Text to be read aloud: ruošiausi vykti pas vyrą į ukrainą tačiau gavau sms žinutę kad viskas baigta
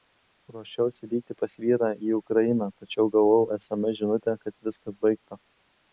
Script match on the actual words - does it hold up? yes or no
yes